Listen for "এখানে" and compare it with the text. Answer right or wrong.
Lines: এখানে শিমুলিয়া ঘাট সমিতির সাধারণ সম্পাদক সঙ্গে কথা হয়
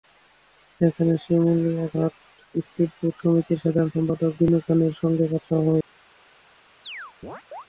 wrong